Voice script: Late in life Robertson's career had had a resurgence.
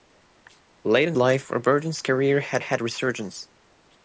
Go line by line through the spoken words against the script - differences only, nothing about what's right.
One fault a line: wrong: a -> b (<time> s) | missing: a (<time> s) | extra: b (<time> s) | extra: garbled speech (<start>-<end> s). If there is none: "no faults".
no faults